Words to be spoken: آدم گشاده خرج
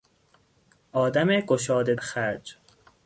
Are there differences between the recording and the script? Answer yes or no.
no